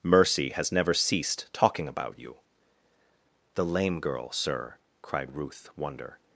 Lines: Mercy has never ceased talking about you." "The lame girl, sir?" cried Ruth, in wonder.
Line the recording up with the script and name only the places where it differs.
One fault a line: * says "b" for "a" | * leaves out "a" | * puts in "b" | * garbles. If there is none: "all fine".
* leaves out "in"